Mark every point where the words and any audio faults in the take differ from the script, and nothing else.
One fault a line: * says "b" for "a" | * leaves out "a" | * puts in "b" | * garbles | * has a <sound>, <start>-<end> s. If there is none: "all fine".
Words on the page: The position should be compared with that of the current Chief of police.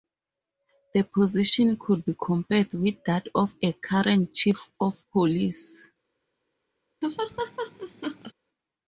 * says "could" for "should"
* says "a" for "the"
* has a laugh, 7.0-8.3 s